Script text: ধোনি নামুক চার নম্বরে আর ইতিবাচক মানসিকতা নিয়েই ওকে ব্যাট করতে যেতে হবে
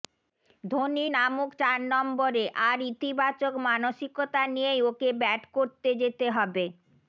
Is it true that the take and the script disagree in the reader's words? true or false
false